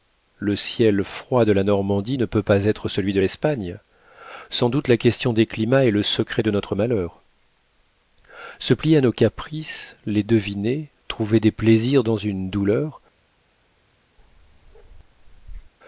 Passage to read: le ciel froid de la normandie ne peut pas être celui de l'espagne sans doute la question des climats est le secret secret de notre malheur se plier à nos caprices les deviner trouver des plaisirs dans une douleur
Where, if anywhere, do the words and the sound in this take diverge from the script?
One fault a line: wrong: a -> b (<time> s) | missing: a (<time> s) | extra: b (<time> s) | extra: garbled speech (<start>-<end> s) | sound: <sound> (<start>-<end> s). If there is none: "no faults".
missing: secret (6.4 s)
sound: bark (14.2-15.7 s)